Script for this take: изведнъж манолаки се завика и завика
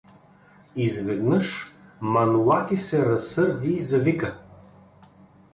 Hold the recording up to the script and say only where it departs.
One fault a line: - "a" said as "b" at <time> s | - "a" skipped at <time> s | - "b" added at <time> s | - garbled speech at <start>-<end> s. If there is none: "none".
- "завика" said as "разсърди" at 3.0 s